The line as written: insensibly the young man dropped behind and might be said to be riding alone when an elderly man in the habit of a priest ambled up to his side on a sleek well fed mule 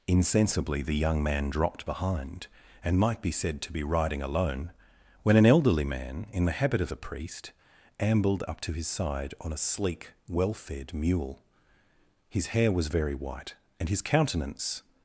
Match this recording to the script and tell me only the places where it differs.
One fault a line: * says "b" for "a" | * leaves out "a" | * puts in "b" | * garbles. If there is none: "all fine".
* puts in "his hair was very white and his countenance"